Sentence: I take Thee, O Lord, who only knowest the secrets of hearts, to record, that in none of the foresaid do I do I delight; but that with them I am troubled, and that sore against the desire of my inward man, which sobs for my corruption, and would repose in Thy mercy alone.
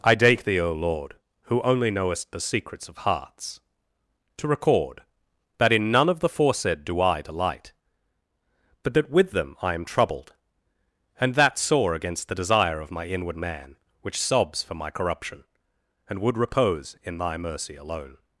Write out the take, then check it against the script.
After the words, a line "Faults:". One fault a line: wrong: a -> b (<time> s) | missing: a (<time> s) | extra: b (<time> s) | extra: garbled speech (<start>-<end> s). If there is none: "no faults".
I take Thee, O Lord, who only knowest the secrets of hearts, to record, that in none of the foresaid do I delight; but that with them I am troubled, and that sore against the desire of my inward man, which sobs for my corruption, and would repose in Thy mercy alone.
Faults:
missing: do I (7.2 s)